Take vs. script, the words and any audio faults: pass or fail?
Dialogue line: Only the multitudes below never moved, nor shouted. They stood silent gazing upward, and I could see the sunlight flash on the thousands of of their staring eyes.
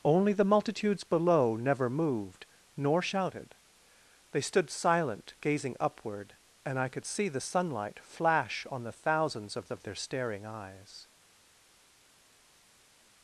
pass